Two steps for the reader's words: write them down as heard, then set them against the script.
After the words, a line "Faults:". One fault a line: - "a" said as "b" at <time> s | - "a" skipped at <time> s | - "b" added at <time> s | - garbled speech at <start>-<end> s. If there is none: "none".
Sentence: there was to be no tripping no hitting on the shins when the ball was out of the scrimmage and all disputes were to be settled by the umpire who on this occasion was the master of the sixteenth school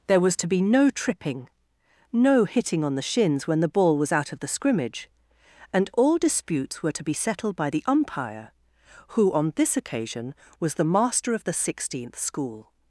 there was to be no tripping no hitting on the shins when the ball was out of the scrimmage and all disputes were to be settled by the umpire who on this occasion was the master of the sixteenth school
Faults:
none